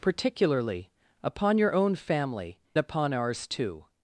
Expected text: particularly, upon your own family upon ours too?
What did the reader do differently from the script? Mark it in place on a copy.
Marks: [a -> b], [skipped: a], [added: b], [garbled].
particularly, upon your own family upon ours too?